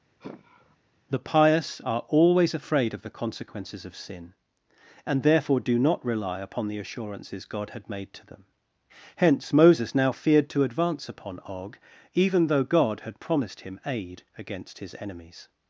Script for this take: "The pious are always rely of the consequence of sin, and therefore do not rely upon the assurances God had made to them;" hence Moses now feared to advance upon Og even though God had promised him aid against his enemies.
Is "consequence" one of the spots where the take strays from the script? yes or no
yes